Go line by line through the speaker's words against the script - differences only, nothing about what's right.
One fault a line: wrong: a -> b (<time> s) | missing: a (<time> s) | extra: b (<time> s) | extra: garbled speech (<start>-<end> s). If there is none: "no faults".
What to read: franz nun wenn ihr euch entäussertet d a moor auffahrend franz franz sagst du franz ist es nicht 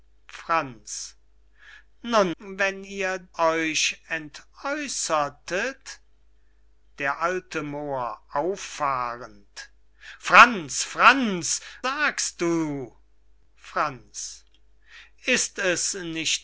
no faults